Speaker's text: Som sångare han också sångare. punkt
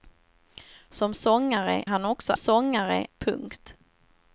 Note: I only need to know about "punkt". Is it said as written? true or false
true